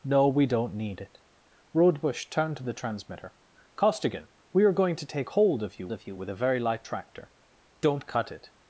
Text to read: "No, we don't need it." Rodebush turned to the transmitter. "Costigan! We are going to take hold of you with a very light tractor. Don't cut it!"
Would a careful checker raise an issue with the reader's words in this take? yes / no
yes